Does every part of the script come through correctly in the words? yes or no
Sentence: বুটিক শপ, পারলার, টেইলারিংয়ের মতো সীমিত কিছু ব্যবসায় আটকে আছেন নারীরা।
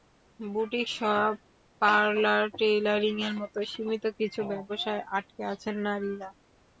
yes